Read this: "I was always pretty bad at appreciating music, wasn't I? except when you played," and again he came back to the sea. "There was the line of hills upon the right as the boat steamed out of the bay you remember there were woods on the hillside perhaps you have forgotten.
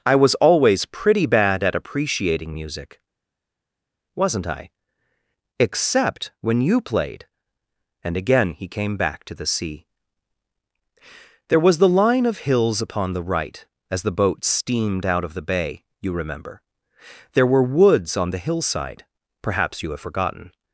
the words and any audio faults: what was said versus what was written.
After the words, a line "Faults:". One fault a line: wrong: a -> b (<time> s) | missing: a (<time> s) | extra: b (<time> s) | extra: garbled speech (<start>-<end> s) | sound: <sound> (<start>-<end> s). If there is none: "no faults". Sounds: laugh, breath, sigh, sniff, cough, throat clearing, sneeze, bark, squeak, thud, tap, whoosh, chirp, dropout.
"I was always pretty bad at appreciating music, wasn't I? except when you played," and again he came back to the sea. "There was the line of hills upon the right as the boat steamed out of the bay you remember there were woods on the hillside perhaps you have forgotten.
Faults:
no faults